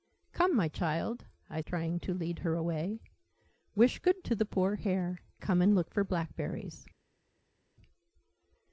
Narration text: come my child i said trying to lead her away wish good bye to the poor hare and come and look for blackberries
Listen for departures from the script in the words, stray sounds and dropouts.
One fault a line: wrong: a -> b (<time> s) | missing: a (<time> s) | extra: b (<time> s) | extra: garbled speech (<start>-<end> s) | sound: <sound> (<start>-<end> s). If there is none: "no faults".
missing: said (1.6 s)
missing: bye (4.2 s)
missing: and (5.2 s)